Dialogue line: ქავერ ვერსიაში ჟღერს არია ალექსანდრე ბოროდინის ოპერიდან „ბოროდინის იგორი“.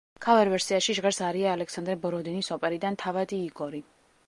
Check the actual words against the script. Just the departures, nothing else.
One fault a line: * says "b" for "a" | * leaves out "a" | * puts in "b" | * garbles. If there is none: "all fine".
* says "თავადი" for "ბოროდინის"